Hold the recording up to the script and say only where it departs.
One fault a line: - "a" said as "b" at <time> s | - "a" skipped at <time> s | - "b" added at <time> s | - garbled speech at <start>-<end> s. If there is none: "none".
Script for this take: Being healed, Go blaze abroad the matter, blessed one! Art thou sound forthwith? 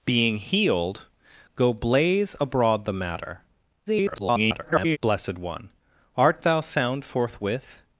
- garbled speech at 3.9-5.0 s